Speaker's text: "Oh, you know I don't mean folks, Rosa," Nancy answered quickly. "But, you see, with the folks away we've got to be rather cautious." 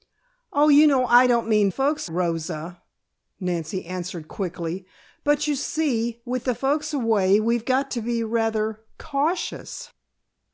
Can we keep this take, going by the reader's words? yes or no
yes